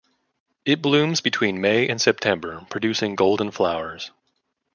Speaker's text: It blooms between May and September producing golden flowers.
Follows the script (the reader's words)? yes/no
yes